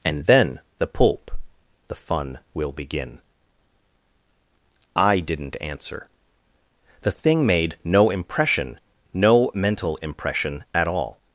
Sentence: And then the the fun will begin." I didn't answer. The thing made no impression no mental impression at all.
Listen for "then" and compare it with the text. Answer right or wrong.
right